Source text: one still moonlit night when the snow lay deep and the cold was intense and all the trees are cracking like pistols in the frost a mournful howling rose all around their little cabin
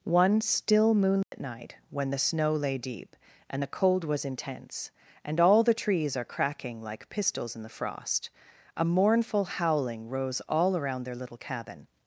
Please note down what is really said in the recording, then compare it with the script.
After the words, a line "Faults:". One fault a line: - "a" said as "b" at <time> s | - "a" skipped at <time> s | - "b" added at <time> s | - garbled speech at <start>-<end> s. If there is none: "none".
one still moonlit night when the snow lay deep and the cold was intense and all the trees are cracking like pistols in the frost a mournful howling rose all around their little cabin
Faults:
none